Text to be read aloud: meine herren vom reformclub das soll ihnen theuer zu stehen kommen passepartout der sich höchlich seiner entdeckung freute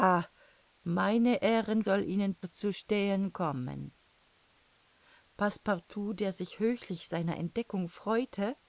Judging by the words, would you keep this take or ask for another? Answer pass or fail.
fail